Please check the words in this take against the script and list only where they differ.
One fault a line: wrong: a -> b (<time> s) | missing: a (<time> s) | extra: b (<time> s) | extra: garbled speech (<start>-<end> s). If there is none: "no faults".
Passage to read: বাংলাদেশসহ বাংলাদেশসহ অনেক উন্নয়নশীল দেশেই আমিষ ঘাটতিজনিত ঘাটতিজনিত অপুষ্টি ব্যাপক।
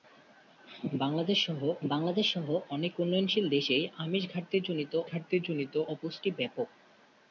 no faults